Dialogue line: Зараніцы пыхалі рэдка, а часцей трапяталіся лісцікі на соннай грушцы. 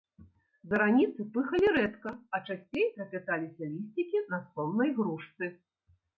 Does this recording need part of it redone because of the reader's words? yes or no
no